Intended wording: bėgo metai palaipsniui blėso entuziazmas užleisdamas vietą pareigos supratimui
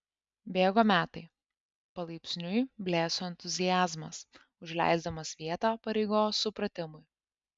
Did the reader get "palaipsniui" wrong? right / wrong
right